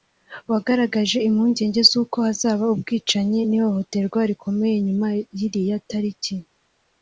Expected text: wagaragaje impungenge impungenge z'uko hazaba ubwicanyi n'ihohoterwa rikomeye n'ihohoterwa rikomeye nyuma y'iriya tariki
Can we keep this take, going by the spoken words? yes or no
no